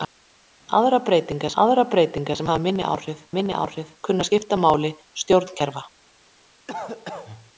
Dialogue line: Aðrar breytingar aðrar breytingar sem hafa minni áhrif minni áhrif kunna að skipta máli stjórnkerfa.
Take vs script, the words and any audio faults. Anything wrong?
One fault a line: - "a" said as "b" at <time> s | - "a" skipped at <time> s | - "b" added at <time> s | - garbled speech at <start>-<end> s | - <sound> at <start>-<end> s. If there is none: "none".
- cough at 6.7-7.5 s